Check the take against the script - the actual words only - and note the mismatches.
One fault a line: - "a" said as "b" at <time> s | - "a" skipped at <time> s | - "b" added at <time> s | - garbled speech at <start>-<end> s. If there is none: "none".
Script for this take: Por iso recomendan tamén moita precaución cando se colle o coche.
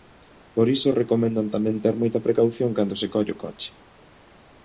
- "ter" added at 1.8 s